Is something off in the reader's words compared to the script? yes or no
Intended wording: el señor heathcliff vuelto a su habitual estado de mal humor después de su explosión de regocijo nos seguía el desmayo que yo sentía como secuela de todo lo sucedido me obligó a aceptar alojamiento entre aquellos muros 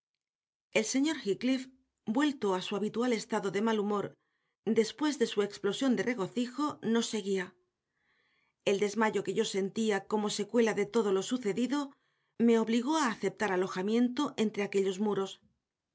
no